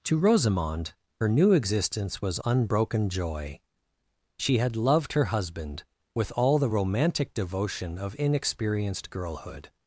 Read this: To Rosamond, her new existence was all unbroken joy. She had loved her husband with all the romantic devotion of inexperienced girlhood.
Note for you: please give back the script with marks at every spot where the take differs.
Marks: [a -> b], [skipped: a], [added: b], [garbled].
To Rosamond, her new existence was [skipped: all] unbroken joy. She had loved her husband with all the romantic devotion of inexperienced girlhood.